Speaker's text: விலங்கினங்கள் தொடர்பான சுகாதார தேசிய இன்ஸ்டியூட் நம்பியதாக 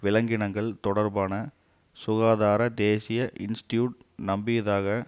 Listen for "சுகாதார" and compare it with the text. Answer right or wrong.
right